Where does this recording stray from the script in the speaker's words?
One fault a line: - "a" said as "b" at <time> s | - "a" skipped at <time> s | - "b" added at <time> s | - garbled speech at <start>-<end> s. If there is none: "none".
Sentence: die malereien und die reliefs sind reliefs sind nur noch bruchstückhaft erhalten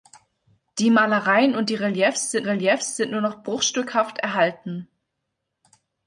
none